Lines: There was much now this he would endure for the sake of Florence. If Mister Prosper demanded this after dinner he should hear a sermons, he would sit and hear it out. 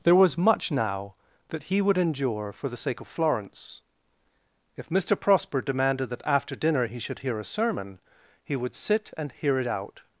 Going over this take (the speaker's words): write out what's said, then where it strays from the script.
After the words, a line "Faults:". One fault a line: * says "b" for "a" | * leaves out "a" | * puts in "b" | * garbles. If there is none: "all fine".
There was much now that he would endure for the sake of Florence. If Mister Prosper demanded that after dinner he should hear a sermon, he would sit and hear it out.
Faults:
* says "that" for "this"
* says "that" for "this"
* says "sermon" for "sermons"